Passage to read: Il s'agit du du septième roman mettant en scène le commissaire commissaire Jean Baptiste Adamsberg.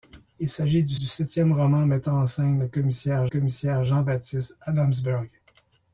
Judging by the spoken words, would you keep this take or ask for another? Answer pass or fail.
pass